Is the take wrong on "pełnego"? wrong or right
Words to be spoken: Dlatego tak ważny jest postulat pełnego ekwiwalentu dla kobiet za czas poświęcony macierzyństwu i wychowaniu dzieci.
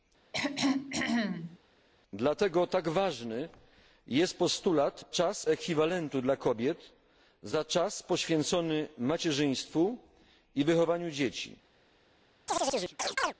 wrong